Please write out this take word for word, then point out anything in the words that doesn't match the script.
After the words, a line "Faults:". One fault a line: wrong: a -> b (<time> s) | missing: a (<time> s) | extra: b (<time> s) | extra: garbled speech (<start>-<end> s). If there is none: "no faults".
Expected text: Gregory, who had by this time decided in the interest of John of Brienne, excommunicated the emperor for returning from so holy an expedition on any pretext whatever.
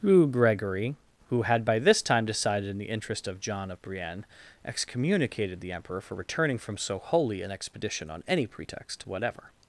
who Gregory, who had by this time decided in the interest of John of Brienne, excommunicated the emperor for returning from so holy an expedition on any pretext whatever.
Faults:
extra: who (0.0 s)